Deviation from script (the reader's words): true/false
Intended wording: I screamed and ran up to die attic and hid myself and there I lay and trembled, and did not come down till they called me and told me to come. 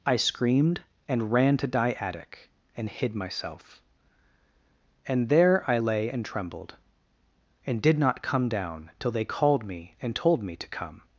true